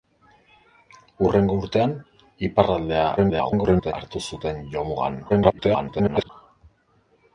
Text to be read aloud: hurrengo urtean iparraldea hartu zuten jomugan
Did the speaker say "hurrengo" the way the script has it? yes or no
yes